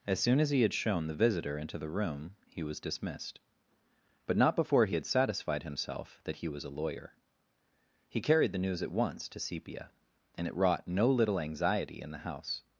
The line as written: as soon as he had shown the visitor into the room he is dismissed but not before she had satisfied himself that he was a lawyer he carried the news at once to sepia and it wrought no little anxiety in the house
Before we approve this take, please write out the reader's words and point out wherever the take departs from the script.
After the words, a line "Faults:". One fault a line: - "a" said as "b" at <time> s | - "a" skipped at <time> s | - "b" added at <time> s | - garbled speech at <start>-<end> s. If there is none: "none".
as soon as he had shown the visitor into the room he was dismissed but not before he had satisfied himself that he was a lawyer he carried the news at once to sepia and it wrought no little anxiety in the house
Faults:
- "is" said as "was" at 2.6 s
- "she" said as "he" at 4.8 s